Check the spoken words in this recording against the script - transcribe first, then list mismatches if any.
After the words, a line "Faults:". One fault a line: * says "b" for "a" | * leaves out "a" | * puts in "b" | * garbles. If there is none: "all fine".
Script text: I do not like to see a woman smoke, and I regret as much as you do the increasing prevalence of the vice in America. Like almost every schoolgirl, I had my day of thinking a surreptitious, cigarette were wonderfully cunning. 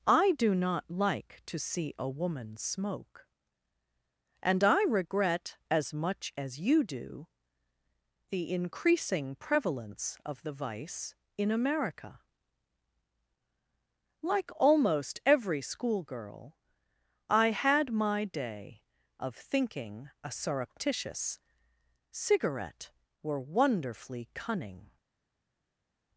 I do not like to see a woman smoke, and I regret as much as you do the increasing prevalence of the vice in America. Like almost every schoolgirl, I had my day of thinking a surreptitious, cigarette were wonderfully cunning.
Faults:
all fine